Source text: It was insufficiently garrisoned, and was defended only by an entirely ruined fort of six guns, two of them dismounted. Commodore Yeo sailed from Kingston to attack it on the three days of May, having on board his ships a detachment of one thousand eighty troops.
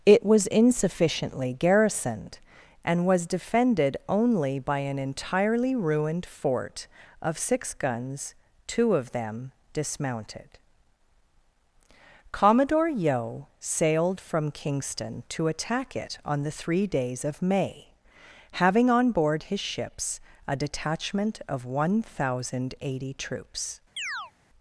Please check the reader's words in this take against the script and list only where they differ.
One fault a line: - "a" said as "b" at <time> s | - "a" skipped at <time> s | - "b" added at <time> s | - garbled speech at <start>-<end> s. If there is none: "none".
none